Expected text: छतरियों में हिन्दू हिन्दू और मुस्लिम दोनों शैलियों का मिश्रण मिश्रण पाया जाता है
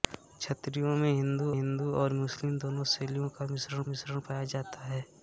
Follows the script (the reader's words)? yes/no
yes